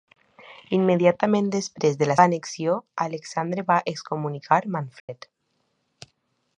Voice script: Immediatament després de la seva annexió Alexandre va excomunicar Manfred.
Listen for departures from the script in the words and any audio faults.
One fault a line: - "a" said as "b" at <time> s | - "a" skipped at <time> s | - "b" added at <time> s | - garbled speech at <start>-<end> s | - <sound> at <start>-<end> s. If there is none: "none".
- "seva" skipped at 2.1 s
- dropout at 5.0-5.1 s